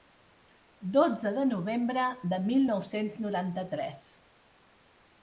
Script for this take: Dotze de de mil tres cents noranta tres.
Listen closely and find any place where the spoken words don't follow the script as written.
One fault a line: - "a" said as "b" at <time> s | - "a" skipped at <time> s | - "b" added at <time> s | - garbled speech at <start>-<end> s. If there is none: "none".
- "novembre" added at 1.5 s
- "tres" said as "nou" at 2.7 s